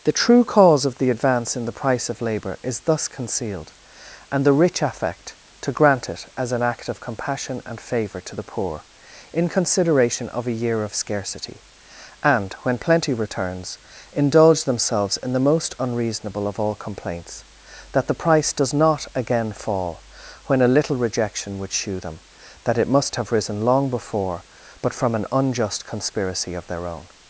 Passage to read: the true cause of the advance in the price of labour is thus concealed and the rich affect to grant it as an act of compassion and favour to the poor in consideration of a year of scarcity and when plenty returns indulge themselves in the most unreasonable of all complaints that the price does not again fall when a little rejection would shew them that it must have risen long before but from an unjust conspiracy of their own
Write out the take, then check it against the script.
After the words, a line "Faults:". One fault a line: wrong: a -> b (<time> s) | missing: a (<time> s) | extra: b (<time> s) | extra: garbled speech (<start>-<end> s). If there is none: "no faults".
the true cause of the advance in the price of labour is thus concealed and the rich affect to grant it as an act of compassion and favour to the poor in consideration of a year of scarcity and when plenty returns indulge themselves in the most unreasonable of all complaints that the price does not again fall when a little rejection would shew them that it must have risen long before but from an unjust conspiracy of their own
Faults:
no faults